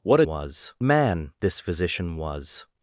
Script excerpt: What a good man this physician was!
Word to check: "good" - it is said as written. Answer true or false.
false